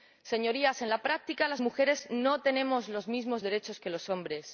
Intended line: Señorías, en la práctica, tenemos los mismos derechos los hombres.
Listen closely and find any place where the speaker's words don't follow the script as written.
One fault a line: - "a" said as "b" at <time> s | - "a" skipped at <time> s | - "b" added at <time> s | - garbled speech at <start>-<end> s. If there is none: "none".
- "las mujeres no" added at 1.5 s
- "que" added at 3.8 s